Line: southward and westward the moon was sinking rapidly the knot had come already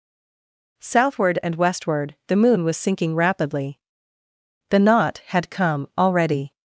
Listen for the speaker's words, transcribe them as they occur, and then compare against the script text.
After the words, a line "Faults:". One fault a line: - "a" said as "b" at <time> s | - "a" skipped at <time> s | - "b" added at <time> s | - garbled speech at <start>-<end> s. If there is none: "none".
southward and westward the moon was sinking rapidly the knot had come already
Faults:
none